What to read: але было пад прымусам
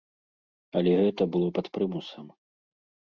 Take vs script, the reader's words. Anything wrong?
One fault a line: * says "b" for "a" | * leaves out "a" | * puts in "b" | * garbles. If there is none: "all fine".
* puts in "гэта"